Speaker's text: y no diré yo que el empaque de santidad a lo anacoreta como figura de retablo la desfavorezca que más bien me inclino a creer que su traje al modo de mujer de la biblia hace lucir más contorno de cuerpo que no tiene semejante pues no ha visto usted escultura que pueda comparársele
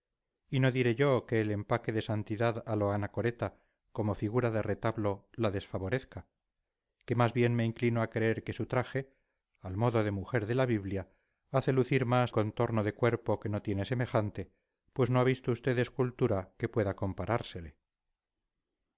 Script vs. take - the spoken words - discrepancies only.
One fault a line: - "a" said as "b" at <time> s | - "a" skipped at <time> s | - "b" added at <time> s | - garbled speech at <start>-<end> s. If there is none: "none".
none